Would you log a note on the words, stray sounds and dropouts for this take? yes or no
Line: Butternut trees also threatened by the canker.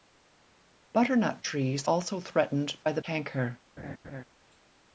yes